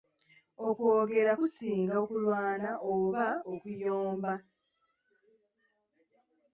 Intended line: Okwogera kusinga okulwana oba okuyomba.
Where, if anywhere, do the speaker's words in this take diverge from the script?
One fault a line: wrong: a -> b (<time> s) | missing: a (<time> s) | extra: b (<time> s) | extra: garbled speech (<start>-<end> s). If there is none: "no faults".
no faults